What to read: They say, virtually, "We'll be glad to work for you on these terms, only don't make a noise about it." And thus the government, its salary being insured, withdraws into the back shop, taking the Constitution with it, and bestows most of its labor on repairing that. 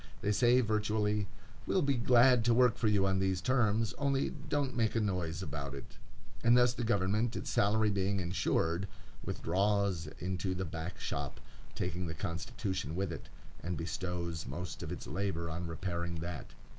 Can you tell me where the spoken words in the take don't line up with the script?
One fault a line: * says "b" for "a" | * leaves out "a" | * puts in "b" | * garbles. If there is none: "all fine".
all fine